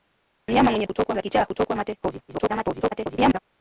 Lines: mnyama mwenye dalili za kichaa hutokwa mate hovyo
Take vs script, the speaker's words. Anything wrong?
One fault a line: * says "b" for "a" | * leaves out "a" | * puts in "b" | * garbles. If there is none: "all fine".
* says "hutokwa" for "dalili"
* garbles